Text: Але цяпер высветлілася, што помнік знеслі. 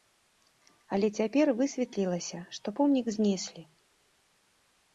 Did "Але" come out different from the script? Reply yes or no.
no